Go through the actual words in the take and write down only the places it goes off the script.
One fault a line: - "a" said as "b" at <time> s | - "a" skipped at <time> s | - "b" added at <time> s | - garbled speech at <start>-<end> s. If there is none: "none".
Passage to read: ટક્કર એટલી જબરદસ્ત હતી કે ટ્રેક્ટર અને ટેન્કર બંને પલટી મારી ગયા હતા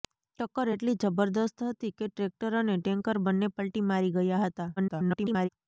- garbled speech at 4.8-5.5 s